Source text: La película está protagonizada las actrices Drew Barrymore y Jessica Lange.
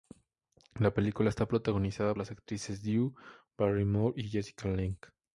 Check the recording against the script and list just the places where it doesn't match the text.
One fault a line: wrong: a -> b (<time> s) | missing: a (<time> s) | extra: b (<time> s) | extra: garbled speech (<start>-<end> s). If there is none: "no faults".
no faults